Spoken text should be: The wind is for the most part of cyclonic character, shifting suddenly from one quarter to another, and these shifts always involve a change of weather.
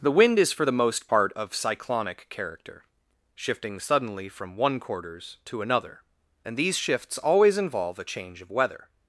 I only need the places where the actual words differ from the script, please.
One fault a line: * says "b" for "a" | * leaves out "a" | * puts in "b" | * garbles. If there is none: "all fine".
* says "quarters" for "quarter"